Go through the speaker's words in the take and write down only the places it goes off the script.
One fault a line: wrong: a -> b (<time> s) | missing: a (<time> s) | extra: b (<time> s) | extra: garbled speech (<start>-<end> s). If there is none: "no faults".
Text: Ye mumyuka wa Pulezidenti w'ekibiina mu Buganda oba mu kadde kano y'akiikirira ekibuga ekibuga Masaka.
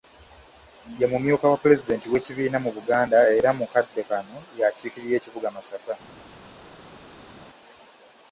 wrong: oba -> era (3.4 s)
missing: ekibuga (5.5 s)